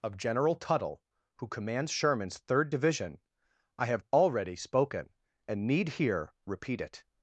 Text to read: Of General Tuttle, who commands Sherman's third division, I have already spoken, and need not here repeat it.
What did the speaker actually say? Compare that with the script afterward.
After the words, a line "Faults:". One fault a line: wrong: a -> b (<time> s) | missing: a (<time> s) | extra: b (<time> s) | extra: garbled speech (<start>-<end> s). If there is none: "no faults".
Of General Tuttle, who commands Sherman's third division, I have already spoken, and need here repeat it.
Faults:
missing: not (5.9 s)